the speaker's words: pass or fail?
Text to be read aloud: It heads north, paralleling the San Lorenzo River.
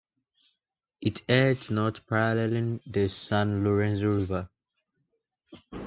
pass